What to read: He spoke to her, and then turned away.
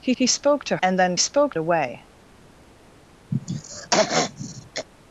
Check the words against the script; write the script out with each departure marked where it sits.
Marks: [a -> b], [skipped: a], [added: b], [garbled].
He [added: he] spoke to [skipped: her,] and then [turned -> spoke] away.